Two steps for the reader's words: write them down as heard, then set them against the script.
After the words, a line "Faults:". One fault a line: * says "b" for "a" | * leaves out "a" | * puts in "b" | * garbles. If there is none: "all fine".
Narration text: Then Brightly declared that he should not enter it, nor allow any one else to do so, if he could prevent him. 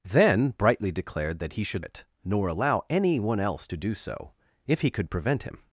Then Brightly declared that he should it, nor allow any one else to do so, if he could prevent him.
Faults:
* leaves out "not enter"